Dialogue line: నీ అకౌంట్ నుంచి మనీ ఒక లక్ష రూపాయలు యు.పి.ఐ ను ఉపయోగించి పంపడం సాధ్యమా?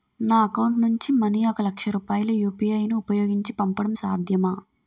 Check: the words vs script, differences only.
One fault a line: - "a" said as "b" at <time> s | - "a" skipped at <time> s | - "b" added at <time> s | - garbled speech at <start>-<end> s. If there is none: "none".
- "నీ" said as "నా" at 0.2 s